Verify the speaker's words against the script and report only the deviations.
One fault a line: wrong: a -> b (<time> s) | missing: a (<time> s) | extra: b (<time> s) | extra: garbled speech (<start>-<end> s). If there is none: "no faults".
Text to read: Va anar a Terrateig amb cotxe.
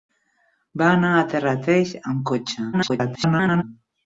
extra: garbled speech (2.7-3.6 s)